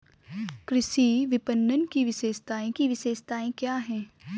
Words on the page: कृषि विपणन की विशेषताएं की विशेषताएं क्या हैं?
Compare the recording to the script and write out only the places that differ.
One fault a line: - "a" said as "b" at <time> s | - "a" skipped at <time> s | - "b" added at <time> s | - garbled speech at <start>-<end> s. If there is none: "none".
none